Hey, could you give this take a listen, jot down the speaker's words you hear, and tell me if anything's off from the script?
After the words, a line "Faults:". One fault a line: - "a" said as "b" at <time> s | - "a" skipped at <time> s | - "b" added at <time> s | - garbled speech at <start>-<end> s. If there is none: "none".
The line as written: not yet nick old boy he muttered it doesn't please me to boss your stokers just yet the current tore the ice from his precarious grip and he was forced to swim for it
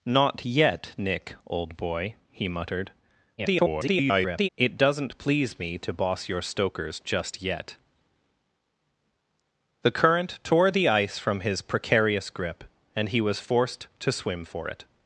not yet nick old boy he muttered [garbled] it doesn't please me to boss your stokers just yet the current tore the ice from his precarious grip and he was forced to swim for it
Faults:
- garbled speech at 3.4-4.5 s